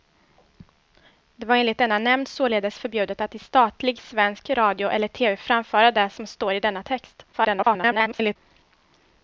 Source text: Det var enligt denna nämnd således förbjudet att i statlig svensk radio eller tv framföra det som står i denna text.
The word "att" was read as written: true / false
true